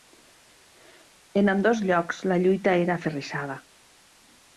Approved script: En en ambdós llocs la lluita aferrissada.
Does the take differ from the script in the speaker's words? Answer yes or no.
yes